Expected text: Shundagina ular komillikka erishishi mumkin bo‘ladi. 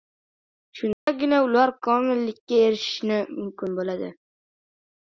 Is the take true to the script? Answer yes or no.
yes